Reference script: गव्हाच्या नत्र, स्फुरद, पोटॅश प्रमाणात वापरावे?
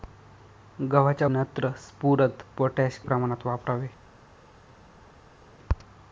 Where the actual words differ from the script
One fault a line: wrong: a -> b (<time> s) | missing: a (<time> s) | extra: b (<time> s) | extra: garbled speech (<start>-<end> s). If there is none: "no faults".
no faults